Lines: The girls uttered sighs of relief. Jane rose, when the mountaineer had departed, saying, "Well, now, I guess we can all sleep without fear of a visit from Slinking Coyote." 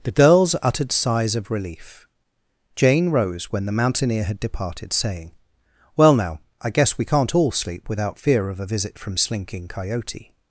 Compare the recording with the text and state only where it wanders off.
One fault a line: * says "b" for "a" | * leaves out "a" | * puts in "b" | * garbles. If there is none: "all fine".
* says "can't" for "can"